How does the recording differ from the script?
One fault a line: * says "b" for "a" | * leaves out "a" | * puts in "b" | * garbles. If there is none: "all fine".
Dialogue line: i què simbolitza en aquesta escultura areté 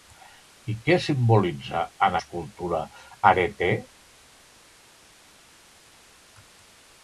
* leaves out "aquesta"